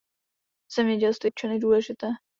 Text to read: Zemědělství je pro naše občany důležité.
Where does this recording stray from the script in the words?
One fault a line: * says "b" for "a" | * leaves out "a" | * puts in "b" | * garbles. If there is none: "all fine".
* leaves out "je pro naše"